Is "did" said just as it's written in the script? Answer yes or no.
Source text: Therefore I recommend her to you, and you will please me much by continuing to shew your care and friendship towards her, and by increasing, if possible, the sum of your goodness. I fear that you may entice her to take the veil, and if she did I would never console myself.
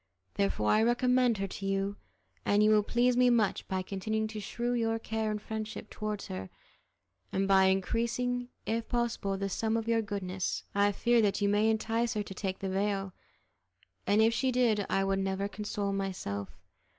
yes